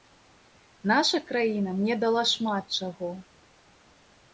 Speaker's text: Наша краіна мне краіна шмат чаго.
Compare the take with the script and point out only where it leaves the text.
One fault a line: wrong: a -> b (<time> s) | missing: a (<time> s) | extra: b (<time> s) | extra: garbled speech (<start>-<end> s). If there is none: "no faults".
wrong: краіна -> дала (2.1 s)